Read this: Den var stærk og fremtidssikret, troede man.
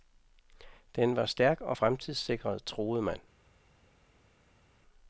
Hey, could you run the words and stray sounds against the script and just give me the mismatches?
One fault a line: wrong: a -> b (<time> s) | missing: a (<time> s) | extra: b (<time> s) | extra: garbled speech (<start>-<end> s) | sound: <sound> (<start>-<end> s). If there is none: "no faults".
no faults